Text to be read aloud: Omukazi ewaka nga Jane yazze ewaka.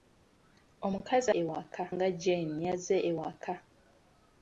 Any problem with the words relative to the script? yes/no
no